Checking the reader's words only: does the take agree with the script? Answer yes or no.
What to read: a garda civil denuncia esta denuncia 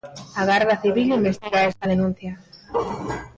no